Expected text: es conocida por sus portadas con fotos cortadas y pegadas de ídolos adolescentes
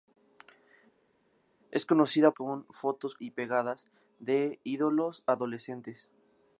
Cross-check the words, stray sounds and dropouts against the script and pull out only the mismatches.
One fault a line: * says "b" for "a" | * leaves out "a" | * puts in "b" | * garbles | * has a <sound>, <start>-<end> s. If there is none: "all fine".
* leaves out "por sus portadas"
* leaves out "cortadas"